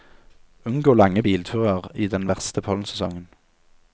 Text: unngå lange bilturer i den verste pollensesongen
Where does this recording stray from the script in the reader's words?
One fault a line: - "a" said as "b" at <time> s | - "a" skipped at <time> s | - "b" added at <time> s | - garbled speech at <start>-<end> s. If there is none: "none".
none